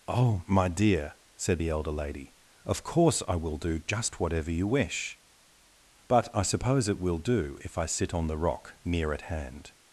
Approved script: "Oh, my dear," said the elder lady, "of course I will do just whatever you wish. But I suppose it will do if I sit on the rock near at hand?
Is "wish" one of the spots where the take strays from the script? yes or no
no